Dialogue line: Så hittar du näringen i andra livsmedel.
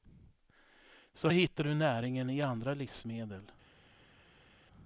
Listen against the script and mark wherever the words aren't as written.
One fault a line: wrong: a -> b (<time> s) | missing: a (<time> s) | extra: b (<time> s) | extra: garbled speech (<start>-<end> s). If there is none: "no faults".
no faults